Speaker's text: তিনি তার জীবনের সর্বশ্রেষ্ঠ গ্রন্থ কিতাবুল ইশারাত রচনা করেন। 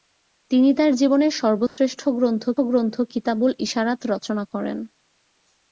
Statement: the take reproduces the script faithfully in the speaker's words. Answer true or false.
false